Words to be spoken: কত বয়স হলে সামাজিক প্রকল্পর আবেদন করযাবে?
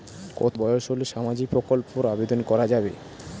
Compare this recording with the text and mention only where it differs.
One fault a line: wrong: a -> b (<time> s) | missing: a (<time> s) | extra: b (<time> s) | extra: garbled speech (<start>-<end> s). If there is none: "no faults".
no faults